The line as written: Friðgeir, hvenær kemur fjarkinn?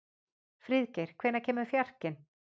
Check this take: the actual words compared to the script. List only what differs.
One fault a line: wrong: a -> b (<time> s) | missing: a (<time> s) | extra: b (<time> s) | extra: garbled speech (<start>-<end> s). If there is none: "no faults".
no faults